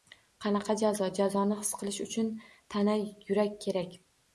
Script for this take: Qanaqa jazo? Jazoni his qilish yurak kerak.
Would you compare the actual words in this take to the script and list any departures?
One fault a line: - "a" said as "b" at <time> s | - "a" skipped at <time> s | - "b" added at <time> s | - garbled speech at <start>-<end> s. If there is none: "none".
- "uchun tana" added at 2.1 s